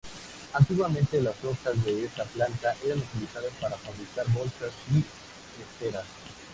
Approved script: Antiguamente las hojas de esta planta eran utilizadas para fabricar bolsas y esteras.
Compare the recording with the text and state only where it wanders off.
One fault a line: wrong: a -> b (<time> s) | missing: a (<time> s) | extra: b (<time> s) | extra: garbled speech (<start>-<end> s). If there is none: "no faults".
no faults